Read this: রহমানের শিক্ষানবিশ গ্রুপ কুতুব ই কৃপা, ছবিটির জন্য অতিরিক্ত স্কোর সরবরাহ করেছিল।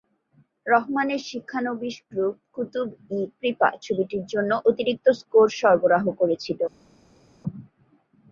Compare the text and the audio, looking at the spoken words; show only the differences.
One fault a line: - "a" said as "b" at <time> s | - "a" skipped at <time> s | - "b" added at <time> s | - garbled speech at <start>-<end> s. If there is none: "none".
none